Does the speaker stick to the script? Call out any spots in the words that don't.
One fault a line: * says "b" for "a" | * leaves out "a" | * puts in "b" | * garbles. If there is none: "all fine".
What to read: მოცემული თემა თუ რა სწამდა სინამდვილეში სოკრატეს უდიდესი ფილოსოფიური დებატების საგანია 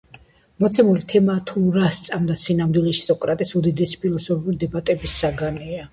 all fine